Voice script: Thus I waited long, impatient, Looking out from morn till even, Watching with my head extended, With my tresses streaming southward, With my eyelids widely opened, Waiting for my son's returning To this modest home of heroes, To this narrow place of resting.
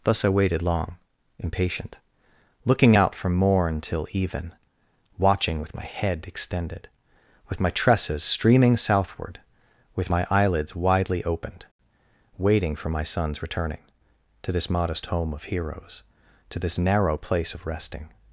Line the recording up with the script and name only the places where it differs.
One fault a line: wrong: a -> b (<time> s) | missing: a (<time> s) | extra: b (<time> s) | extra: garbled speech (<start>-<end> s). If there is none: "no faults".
no faults